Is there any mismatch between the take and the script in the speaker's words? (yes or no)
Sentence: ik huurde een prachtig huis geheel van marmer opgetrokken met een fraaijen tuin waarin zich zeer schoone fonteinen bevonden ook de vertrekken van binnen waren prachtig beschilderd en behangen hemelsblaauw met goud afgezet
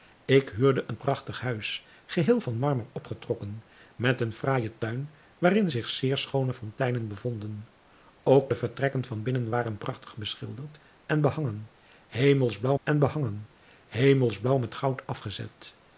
yes